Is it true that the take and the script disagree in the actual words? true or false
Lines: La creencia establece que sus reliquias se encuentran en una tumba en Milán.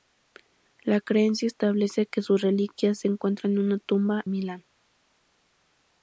true